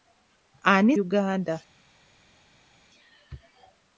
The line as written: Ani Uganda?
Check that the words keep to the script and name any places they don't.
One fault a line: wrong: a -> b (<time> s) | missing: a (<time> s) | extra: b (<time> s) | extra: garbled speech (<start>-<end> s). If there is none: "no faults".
no faults